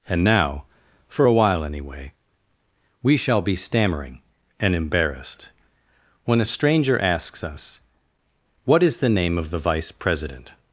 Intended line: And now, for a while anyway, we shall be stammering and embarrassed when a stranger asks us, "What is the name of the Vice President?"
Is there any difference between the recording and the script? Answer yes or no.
no